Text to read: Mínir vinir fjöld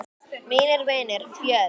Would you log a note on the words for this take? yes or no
no